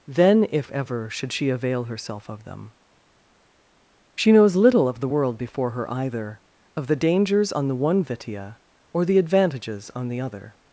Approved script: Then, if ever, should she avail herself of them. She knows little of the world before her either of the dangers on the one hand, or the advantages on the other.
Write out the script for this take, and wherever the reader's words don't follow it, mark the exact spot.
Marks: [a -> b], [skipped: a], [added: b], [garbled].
Then, if ever, should she avail herself of them. She knows little of the world before her either of the dangers on the one [hand, -> vitia] or the advantages on the other.